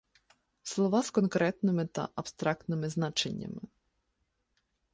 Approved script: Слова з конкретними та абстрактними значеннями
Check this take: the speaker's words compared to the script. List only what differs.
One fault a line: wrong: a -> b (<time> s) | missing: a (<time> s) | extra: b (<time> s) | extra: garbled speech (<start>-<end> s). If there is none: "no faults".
no faults